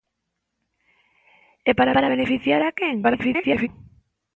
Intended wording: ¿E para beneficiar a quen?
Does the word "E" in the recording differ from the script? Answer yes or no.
no